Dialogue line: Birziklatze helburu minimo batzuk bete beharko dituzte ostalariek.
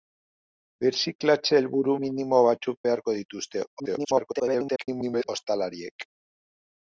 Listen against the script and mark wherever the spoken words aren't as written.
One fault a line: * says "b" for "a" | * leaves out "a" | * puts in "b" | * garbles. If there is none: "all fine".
* leaves out "bete"
* garbles